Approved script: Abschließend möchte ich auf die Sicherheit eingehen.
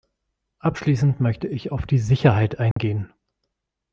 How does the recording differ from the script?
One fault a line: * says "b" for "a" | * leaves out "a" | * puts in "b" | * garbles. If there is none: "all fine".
all fine